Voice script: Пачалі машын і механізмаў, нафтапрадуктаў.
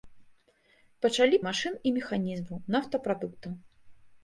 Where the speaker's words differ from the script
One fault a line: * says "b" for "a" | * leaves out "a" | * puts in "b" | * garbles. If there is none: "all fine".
all fine